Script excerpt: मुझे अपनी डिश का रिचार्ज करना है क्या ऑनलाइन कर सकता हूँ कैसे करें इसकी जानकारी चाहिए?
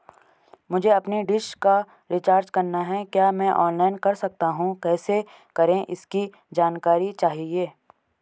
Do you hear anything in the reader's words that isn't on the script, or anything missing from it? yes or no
yes